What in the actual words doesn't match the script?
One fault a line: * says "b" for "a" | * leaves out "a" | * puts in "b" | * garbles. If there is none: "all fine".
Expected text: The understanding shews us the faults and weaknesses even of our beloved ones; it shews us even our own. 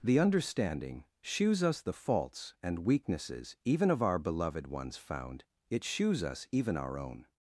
* puts in "found"